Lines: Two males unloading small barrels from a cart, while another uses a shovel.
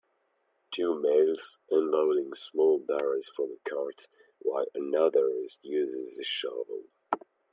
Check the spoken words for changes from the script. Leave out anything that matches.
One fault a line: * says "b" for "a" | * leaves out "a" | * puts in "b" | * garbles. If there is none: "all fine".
all fine